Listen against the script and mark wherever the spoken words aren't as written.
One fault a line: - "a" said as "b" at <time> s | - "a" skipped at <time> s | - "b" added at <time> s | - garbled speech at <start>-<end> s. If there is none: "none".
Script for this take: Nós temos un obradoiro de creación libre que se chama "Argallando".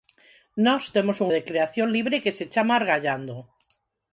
- "obradoiro" skipped at 1.3 s